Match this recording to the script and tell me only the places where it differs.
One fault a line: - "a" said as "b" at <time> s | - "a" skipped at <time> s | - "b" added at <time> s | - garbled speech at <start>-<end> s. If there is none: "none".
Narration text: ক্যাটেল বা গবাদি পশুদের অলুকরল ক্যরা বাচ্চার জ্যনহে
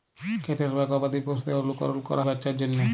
none